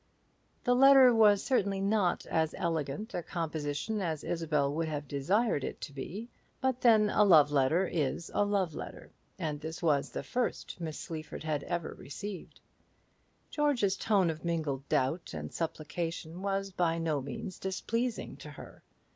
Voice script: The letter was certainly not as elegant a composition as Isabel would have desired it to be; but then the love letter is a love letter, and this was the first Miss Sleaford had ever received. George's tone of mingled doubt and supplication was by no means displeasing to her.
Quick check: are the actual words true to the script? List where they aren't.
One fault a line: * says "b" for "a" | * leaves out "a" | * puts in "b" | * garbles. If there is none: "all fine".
* says "a" for "the"